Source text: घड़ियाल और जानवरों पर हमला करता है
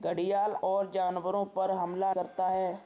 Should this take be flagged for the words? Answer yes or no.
no